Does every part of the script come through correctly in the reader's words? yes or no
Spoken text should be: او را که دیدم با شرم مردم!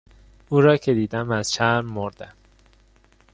no